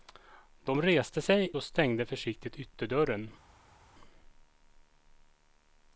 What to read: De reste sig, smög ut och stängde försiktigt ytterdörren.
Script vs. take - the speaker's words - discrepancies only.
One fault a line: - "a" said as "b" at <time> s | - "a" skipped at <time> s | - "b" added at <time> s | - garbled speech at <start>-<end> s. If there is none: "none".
- "smög ut" skipped at 1.5 s